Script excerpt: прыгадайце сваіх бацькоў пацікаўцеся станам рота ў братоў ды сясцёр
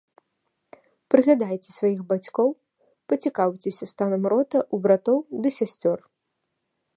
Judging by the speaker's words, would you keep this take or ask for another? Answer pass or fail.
pass